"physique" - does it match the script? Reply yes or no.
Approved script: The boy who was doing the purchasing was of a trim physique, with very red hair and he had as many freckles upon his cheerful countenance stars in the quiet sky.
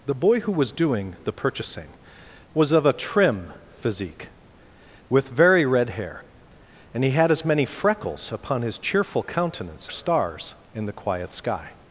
yes